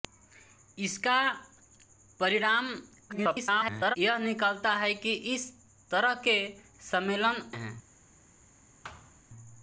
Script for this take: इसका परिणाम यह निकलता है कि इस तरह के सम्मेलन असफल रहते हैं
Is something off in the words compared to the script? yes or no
yes